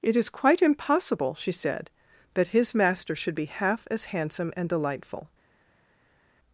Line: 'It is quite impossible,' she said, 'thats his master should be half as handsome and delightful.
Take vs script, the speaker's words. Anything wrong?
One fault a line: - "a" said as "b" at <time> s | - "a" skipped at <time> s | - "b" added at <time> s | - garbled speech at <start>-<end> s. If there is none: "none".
- "thats" said as "that" at 2.3 s